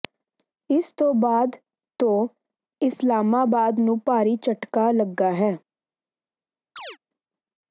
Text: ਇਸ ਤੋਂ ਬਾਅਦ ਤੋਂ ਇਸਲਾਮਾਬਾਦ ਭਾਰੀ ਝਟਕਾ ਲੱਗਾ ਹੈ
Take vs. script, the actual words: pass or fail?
fail